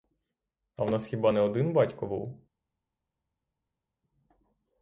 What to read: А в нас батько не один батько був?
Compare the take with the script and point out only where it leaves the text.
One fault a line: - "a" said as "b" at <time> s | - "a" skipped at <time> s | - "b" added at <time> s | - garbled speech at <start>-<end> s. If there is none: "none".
- "батько" said as "хіба" at 1.0 s